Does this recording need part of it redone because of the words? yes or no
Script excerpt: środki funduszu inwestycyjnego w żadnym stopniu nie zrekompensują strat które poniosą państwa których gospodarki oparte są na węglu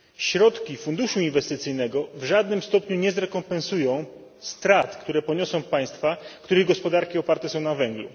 no